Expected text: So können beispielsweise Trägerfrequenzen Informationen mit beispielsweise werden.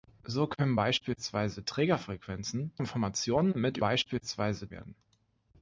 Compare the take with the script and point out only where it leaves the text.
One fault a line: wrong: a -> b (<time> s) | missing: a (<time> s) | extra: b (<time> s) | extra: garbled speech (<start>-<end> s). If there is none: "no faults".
no faults